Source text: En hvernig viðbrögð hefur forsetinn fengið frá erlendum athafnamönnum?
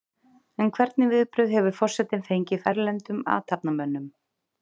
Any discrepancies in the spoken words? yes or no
yes